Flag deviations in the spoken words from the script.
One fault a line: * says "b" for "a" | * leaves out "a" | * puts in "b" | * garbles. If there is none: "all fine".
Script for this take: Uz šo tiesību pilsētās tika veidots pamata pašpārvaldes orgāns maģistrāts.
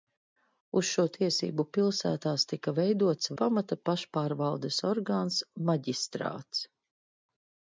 all fine